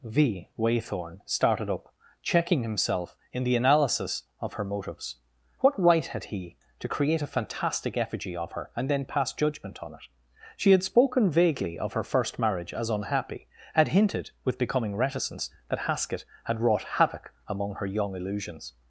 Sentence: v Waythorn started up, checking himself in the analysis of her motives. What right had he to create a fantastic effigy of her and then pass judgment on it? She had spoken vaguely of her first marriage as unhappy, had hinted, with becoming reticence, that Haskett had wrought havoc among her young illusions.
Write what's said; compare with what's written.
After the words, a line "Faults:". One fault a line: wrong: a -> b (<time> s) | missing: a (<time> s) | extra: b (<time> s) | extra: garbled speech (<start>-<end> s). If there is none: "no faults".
v Waythorn started up, checking himself in the analysis of her motives. What right had he to create a fantastic effigy of her and then pass judgment on it? She had spoken vaguely of her first marriage as unhappy, had hinted, with becoming reticence, that Haskett had wrought havoc among her young illusions.
Faults:
no faults